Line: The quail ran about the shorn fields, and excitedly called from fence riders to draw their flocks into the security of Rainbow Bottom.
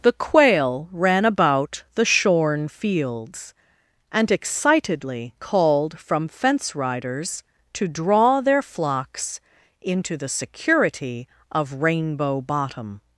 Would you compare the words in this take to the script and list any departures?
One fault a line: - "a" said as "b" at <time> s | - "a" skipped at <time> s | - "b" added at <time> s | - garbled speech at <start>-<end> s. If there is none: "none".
none